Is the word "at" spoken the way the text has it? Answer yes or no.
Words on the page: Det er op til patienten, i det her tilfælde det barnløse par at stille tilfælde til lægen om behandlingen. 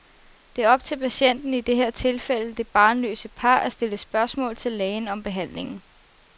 yes